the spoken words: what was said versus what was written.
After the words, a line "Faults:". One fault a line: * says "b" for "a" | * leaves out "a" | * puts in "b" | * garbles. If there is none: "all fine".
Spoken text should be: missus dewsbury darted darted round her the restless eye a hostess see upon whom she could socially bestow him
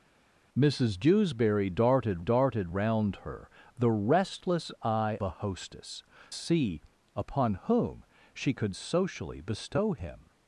missus dewsbury darted darted round her the restless eye a hostess see upon whom she could socially bestow him
Faults:
all fine